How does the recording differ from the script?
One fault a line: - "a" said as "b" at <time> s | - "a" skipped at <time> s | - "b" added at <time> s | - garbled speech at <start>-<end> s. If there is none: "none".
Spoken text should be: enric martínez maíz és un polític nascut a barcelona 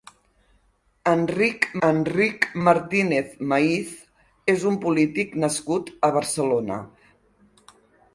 - "enric" added at 1.9 s